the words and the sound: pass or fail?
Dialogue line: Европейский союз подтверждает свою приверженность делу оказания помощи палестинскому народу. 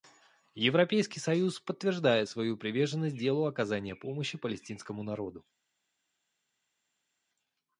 pass